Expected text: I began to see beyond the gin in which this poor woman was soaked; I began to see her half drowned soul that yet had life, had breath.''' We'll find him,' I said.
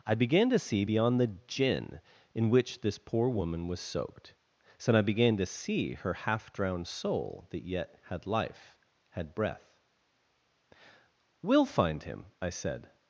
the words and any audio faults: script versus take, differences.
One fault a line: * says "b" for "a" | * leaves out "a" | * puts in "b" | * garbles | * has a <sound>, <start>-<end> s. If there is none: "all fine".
* puts in "so"